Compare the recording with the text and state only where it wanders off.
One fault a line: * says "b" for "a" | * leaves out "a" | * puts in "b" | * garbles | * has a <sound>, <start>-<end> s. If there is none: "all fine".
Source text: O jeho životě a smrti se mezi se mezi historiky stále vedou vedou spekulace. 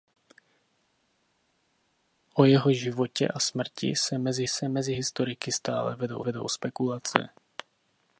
all fine